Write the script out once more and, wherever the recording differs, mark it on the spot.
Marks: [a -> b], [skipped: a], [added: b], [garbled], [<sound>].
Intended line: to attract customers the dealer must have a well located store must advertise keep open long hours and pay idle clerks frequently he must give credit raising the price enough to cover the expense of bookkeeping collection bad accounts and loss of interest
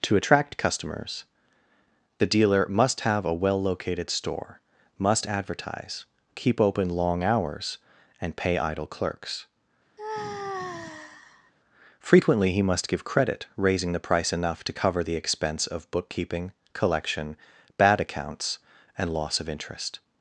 to attract customers the dealer must have a well located store must advertise keep open long hours and pay idle clerks [sigh] frequently he must give credit raising the price enough to cover the expense of bookkeeping collection bad accounts and loss of interest